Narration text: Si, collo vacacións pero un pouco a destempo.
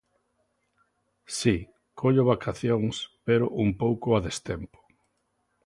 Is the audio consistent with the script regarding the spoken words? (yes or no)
yes